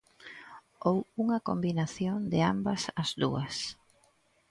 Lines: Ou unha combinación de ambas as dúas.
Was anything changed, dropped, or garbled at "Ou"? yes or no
no